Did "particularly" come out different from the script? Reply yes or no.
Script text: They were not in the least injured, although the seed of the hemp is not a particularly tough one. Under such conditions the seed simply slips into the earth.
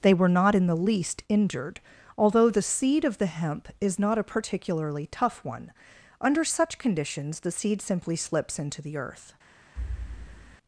no